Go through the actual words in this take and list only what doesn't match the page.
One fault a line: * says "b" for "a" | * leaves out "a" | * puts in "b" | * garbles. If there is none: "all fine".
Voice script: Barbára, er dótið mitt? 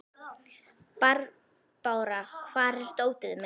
* puts in "hvar"